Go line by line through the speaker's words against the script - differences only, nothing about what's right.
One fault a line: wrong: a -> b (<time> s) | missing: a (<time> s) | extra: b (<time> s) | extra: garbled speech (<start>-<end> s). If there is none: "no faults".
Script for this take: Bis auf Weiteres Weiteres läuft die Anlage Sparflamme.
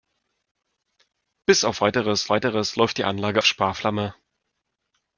no faults